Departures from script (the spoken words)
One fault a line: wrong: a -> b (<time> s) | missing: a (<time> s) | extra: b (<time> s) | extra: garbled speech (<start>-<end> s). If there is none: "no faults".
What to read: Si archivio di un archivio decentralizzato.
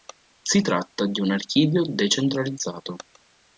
wrong: archivio -> tratta (0.6 s)